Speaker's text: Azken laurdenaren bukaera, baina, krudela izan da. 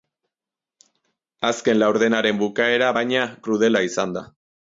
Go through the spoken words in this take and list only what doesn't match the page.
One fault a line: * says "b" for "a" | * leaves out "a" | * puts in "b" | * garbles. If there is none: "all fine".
all fine